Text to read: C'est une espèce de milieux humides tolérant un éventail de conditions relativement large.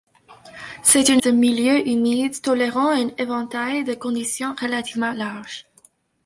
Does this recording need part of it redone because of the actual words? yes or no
yes